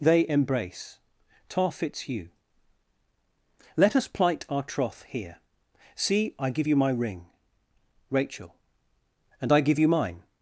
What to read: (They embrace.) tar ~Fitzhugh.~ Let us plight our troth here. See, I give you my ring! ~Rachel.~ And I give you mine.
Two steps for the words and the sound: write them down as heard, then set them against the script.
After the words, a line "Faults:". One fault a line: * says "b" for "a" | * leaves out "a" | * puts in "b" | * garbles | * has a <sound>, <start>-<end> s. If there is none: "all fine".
(They embrace.) tar ~Fitzhugh.~ Let us plight our troth here. See, I give you my ring! ~Rachel.~ And I give you mine.
Faults:
all fine